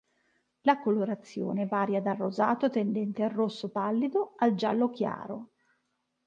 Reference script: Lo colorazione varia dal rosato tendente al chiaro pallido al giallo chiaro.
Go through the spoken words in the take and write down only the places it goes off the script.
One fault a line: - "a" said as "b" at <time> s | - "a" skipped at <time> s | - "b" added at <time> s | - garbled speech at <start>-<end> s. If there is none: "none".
- "Lo" said as "La" at 0.6 s
- "chiaro" said as "rosso" at 3.3 s